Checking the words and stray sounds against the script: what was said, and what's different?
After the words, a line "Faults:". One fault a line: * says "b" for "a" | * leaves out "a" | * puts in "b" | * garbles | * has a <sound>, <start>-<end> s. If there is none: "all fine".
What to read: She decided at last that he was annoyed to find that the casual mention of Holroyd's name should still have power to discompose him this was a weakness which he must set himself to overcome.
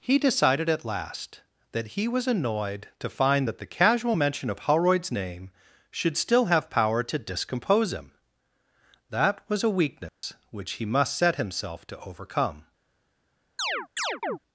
He decided at last that he was annoyed to find that the casual mention of Holroyd's name should still have power to discompose him that was a weakness which he must set himself to overcome.
Faults:
* says "He" for "She"
* says "that" for "this"
* has a dropout, 10.1-10.2 s
* has a chirp, 13.6-14.4 s